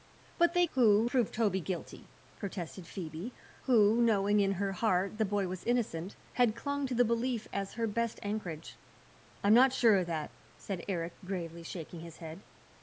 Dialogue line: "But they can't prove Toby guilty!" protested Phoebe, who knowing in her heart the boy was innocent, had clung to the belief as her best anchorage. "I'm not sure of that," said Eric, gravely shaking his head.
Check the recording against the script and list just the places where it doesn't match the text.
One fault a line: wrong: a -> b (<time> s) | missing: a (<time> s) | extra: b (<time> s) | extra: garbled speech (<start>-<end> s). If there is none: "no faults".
wrong: can't -> who (0.7 s)